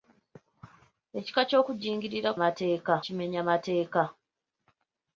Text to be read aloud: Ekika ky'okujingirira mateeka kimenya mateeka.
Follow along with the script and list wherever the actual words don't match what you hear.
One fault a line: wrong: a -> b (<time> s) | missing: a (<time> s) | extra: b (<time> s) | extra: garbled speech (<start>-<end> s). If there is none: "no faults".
no faults